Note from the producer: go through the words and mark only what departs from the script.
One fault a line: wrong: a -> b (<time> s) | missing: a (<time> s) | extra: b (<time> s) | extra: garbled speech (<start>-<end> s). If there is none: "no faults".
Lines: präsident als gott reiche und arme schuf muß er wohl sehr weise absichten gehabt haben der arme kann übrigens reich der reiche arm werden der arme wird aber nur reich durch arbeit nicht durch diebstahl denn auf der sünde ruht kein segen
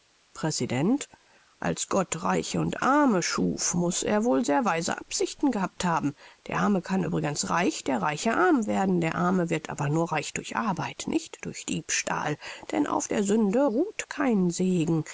no faults